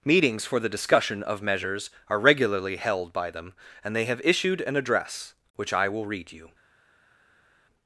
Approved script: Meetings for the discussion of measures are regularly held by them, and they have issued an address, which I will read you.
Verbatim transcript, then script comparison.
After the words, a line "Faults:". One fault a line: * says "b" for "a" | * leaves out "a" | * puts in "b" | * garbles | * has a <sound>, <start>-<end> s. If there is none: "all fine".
Meetings for the discussion of measures are regularly held by them, and they have issued an address, which I will read you.
Faults:
all fine